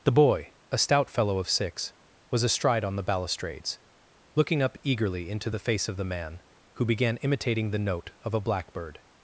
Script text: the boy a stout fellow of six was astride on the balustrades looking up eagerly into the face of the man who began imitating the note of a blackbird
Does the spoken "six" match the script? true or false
true